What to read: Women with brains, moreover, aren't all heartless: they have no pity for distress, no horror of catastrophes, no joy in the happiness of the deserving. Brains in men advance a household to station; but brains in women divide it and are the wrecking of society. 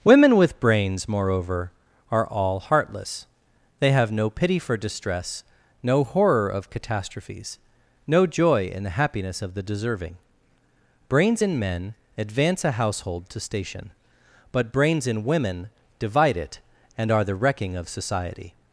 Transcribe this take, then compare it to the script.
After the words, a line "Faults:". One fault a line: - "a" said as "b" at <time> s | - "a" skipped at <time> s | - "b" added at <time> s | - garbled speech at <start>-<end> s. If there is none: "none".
Women with brains, moreover, are all heartless: they have no pity for distress, no horror of catastrophes, no joy in the happiness of the deserving. Brains in men advance a household to station; but brains in women divide it and are the wrecking of society.
Faults:
- "aren't" said as "are" at 2.1 s